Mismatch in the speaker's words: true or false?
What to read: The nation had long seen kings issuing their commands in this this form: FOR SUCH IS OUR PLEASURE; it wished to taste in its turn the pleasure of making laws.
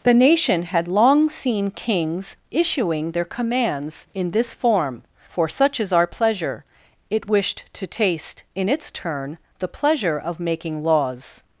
true